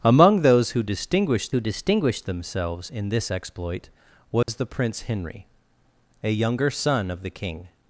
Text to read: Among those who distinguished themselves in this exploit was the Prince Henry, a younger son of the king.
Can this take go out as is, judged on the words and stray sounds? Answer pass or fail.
fail